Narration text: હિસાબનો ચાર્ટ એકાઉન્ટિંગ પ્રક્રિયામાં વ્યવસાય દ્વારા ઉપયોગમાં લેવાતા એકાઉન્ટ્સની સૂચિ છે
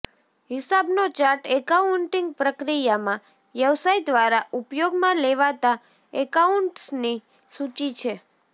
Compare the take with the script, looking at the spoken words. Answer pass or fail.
pass